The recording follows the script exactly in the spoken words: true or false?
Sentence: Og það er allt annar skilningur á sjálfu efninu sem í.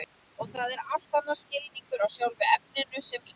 true